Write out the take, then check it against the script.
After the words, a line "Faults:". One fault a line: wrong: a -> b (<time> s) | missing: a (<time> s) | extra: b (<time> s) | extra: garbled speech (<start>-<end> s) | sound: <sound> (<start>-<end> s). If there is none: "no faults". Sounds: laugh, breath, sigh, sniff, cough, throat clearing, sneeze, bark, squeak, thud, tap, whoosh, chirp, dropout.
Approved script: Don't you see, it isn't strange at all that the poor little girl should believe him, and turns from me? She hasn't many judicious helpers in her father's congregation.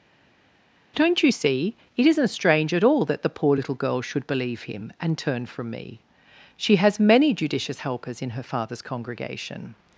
Don't you see, it isn't strange at all that the poor little girl should believe him, and turn from me? She has many judicious helpers in her father's congregation.
Faults:
wrong: turns -> turn (5.2 s)
wrong: hasn't -> has (6.8 s)